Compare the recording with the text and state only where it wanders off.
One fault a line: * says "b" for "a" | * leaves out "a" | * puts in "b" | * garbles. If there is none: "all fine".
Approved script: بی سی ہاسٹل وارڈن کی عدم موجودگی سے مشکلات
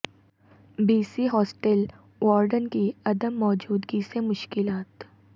all fine